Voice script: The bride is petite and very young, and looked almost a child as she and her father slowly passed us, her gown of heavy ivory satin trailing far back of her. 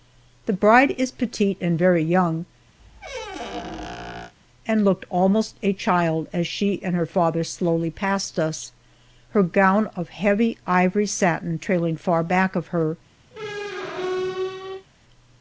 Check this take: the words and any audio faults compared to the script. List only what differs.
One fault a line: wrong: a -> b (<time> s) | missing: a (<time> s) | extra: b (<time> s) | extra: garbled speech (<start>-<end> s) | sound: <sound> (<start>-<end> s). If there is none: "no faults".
sound: squeak (2.8-4.3 s)
sound: squeak (13.3-14.9 s)